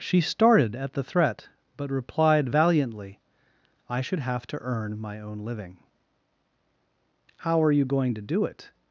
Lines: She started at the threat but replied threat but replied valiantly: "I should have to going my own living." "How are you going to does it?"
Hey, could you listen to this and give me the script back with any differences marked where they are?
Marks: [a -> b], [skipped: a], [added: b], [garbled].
She started at the threat but replied [skipped: threat but replied] valiantly: "I should have to [going -> earn] my own living." "How are you going to [does -> do] it?"